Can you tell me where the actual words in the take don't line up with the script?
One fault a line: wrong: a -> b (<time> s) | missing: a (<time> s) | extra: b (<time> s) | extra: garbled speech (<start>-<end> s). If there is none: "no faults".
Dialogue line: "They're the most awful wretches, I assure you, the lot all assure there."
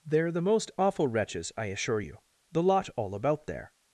wrong: assure -> about (3.1 s)